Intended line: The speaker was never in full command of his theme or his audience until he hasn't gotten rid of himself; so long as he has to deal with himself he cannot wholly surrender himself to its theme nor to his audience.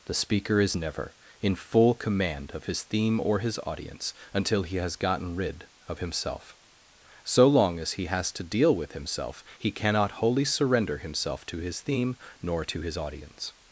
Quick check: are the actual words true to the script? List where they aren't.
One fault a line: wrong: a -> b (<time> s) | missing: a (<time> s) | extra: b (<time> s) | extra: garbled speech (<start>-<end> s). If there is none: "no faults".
wrong: was -> is (0.6 s)
wrong: hasn't -> has (4.8 s)
wrong: its -> his (11.6 s)